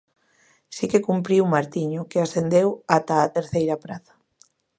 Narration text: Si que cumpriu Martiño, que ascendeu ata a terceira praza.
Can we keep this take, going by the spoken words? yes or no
yes